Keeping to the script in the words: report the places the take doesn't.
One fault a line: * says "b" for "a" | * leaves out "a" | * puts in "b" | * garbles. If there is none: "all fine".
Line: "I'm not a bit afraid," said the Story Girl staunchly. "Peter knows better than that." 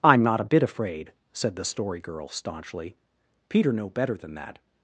* says "know" for "knows"